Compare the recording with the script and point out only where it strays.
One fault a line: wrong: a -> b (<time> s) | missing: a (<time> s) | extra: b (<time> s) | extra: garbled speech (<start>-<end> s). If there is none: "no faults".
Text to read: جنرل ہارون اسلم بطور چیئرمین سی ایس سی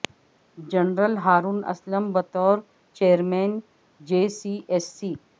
extra: جے (4.0 s)